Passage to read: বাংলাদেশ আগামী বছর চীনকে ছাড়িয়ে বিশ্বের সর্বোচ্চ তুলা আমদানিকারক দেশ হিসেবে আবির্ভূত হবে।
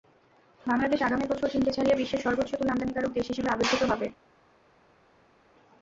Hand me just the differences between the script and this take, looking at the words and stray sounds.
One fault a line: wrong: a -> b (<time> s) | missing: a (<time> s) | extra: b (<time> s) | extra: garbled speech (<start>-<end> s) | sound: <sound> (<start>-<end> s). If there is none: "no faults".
no faults